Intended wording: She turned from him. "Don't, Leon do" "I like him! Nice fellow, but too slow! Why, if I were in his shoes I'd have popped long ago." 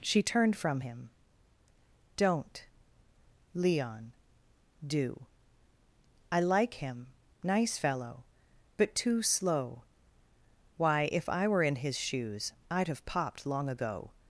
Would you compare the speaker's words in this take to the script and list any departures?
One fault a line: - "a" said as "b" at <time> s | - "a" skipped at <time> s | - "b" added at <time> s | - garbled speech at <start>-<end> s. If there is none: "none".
none